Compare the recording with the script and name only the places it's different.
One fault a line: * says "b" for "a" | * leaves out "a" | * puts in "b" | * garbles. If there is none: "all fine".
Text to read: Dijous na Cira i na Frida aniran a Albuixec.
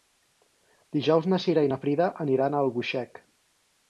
all fine